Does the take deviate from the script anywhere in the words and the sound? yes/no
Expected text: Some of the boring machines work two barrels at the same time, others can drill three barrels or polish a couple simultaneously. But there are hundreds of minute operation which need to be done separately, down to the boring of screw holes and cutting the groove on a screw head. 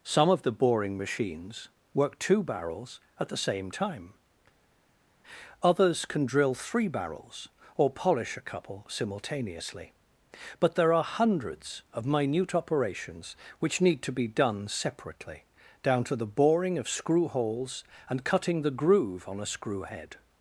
yes